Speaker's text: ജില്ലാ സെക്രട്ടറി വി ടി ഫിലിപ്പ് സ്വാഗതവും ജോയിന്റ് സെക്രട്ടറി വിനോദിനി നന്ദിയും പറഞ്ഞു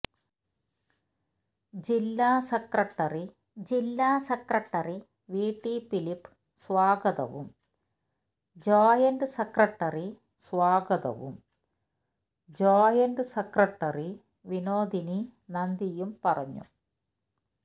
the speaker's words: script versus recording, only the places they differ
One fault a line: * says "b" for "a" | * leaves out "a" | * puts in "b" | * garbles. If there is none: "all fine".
* puts in "ജില്ലാ സെക്രട്ടറി"
* puts in "സ്വാഗതവും ജോയിന്റ് സെക്രട്ടറി"